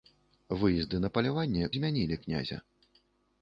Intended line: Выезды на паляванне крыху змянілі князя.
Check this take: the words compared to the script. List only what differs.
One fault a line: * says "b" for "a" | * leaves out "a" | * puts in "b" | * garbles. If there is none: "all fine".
* leaves out "крыху"